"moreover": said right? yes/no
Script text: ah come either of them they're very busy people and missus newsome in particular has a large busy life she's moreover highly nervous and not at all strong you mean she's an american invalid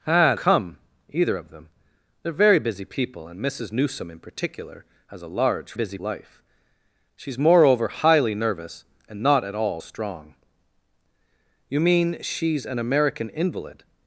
yes